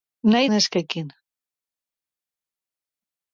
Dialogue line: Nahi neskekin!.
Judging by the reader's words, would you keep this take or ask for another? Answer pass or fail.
pass